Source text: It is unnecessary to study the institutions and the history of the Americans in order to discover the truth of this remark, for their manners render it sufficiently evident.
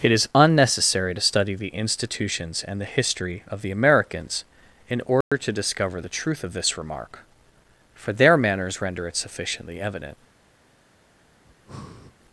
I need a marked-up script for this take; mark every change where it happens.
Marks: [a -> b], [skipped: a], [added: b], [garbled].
It is unnecessary to study the institutions and the history of the Americans in order to discover the truth of this remark, for their manners render it sufficiently evident.